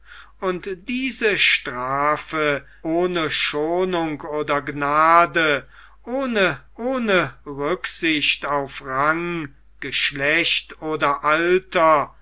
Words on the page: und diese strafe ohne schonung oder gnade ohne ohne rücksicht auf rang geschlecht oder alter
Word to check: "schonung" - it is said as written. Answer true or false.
true